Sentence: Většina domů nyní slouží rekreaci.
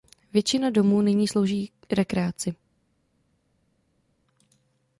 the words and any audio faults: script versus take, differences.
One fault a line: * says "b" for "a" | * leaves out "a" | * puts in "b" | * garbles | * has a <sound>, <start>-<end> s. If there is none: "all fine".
all fine